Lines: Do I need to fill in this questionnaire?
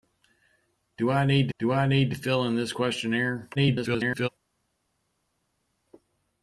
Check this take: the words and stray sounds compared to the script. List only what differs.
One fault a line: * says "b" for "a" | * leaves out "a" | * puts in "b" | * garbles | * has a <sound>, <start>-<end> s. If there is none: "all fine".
* puts in "do I need"
* garbles